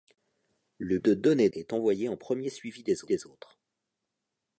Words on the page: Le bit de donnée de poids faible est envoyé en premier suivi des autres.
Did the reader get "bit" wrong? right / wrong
wrong